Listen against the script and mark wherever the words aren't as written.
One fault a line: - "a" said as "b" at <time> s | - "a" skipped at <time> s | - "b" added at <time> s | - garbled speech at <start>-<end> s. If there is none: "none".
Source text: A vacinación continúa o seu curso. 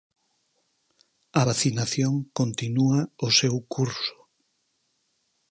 none